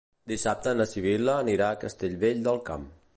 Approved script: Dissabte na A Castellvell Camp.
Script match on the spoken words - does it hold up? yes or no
no